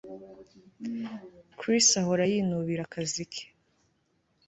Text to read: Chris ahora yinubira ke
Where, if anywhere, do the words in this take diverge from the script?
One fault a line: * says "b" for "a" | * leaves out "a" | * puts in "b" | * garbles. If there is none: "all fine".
* puts in "akazi"